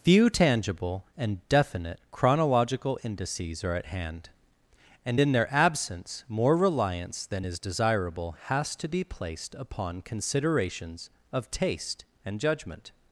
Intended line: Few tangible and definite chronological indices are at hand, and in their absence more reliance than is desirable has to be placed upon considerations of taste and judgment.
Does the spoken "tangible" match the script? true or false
true